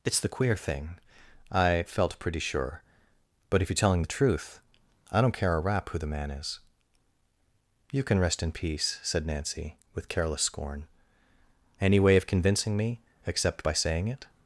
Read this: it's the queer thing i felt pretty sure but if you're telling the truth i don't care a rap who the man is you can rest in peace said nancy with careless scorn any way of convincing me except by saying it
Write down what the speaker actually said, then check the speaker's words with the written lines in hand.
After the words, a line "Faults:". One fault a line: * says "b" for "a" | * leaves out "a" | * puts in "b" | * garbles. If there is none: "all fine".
it's the queer thing i felt pretty sure but if you're telling the truth i don't care a rap who the man is you can rest in peace said nancy with careless scorn any way of convincing me except by saying it
Faults:
all fine